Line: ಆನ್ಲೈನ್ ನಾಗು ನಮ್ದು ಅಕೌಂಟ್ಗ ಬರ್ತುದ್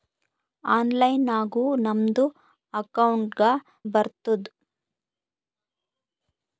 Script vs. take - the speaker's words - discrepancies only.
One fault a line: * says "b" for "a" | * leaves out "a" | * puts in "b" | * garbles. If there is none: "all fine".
all fine